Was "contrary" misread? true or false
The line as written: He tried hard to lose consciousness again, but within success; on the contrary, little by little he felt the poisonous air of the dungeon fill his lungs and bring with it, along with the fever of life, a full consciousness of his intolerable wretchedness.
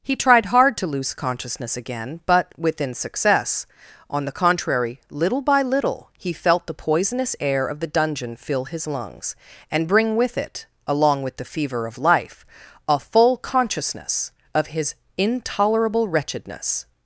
false